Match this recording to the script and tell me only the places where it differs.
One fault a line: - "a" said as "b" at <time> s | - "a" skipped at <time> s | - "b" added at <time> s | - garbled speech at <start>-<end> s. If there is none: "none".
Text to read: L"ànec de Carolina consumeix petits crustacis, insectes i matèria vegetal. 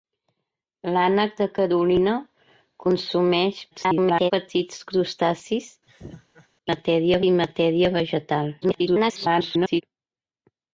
- garbled speech at 3.7-4.3 s
- "insectes" said as "matèria" at 6.7 s
- garbled speech at 8.6-9.8 s